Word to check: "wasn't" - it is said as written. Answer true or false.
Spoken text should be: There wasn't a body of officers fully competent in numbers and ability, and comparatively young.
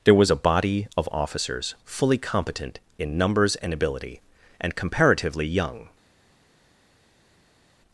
false